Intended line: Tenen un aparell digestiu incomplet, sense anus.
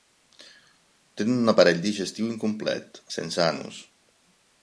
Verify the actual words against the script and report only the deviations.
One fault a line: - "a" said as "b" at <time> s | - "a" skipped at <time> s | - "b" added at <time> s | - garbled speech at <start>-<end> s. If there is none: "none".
none